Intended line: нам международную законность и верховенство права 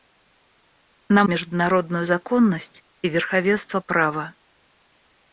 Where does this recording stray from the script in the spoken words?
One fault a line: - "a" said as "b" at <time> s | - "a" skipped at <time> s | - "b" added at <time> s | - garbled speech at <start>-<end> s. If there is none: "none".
none